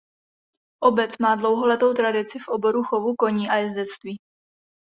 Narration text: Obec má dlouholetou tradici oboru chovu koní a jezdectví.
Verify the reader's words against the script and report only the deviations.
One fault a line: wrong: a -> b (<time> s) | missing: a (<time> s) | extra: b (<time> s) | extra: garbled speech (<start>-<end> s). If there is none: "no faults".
extra: v (2.4 s)